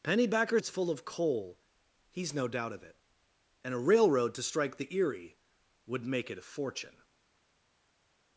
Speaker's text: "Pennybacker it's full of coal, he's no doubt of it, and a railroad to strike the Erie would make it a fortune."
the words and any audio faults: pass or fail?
pass